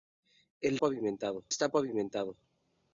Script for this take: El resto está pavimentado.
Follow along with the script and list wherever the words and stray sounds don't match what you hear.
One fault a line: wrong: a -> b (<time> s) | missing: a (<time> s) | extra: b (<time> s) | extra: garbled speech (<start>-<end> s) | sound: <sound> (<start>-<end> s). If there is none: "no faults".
wrong: resto -> pavimentado (0.8 s)